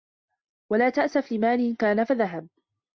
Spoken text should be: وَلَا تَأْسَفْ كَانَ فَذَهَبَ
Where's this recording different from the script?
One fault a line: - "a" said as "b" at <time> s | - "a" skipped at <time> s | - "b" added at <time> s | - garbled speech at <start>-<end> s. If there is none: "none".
- "لِمَالٍ" added at 1.3 s